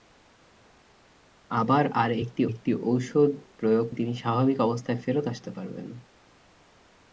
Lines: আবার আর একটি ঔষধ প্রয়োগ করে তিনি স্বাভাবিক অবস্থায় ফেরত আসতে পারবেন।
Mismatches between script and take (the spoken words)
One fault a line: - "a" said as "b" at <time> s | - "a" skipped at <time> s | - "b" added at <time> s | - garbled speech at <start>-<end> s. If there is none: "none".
- "একটি" added at 2.5 s
- "করে" skipped at 3.9 s